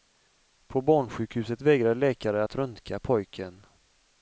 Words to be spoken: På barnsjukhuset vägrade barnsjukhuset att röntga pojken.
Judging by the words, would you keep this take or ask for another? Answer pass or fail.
fail